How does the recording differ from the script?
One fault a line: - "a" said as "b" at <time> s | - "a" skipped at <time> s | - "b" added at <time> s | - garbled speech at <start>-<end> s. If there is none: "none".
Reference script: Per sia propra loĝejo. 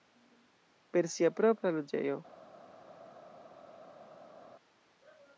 none